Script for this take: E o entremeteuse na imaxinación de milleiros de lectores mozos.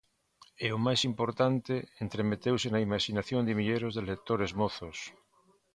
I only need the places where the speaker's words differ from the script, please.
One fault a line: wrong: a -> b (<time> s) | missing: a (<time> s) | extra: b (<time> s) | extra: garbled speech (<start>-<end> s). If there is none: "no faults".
extra: máis importante (0.8 s)